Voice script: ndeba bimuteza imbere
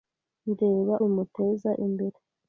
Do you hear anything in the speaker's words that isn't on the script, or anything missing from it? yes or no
no